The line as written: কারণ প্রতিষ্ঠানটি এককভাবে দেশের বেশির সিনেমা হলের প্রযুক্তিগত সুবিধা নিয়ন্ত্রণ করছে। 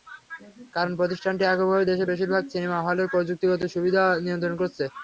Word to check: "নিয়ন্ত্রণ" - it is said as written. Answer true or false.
true